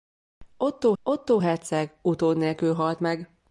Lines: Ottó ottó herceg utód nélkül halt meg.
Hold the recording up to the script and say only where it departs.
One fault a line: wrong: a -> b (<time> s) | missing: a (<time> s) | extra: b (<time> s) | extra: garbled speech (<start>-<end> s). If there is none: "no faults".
no faults